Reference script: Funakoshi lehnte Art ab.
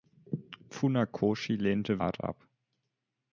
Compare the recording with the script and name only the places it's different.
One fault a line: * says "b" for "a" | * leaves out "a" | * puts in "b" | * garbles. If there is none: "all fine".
all fine